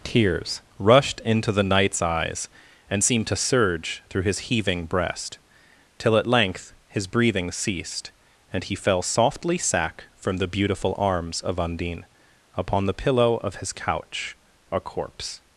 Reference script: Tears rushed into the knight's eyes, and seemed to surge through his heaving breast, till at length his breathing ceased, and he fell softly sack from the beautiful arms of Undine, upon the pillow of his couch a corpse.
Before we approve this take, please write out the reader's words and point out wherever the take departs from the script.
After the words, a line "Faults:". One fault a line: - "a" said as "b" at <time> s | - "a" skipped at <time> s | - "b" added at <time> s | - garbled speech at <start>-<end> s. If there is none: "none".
Tears rushed into the knight's eyes, and seemed to surge through his heaving breast, till at length his breathing ceased, and he fell softly sack from the beautiful arms of Undine, upon the pillow of his couch a corpse.
Faults:
none